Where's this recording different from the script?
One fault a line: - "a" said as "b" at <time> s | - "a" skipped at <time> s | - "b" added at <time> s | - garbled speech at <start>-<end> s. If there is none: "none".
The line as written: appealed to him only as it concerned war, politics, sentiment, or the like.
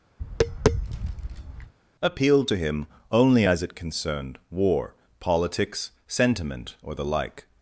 none